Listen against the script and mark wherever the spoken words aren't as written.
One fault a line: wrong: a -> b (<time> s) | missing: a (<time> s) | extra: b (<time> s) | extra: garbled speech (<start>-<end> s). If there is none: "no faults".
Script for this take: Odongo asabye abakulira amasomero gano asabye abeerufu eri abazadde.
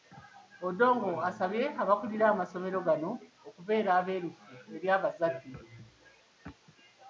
wrong: asabye -> okubeera (3.5 s)